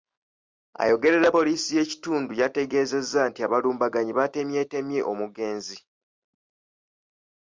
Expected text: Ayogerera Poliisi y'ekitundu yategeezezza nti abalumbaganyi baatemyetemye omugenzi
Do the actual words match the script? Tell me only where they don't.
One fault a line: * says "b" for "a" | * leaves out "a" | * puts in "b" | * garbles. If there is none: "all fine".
all fine